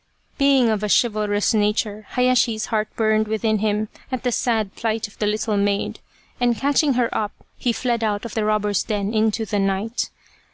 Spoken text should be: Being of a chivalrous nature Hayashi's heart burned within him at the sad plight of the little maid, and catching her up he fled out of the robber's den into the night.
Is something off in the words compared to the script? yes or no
no